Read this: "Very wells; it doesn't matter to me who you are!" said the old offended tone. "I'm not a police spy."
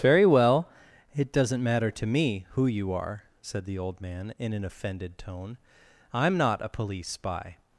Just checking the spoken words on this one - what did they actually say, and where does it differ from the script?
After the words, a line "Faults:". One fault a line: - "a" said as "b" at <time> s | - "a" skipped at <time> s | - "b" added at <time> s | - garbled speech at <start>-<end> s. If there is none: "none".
"Very well; it doesn't matter to me who you are!" said the old man in an offended tone. "I'm not a police spy."
Faults:
- "wells" said as "well" at 0.2 s
- "man in an" added at 4.0 s